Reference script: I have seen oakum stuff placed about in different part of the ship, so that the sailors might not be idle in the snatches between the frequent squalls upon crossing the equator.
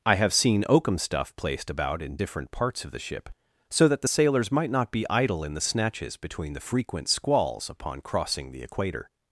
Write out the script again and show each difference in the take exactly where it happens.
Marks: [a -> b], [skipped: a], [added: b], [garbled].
I have seen oakum stuff placed about in different [part -> parts] of the ship, so that the sailors might not be idle in the snatches between the frequent squalls upon crossing the equator.